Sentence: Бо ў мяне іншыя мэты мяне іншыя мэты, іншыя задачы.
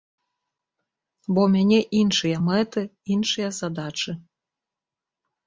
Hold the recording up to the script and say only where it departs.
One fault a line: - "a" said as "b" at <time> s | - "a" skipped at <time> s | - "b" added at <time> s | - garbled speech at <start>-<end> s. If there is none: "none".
- "мяне іншыя мэты" skipped at 2.8 s